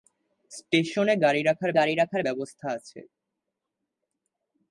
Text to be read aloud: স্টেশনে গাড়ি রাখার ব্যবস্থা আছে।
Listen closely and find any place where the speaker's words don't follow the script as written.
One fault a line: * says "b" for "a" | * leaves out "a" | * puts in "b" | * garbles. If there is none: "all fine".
* puts in "গাড়ি রাখার"